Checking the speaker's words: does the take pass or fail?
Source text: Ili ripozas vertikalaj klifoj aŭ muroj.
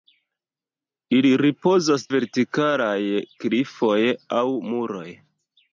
pass